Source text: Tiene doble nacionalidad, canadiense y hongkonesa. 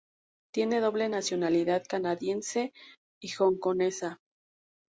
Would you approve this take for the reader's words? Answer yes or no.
yes